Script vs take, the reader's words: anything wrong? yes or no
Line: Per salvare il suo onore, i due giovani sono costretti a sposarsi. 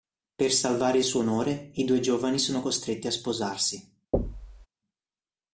no